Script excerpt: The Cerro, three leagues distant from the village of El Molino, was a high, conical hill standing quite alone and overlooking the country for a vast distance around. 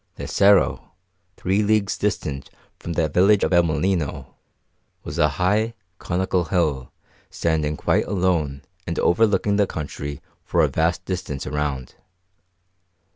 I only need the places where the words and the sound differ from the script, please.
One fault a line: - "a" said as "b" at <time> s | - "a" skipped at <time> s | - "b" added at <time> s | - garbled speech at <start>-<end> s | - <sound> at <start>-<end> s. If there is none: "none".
none